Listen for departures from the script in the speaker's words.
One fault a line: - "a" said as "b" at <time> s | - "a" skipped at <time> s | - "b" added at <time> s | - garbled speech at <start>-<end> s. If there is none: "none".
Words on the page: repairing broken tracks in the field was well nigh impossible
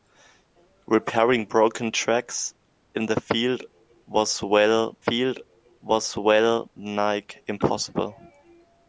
- "field was well" added at 5.0 s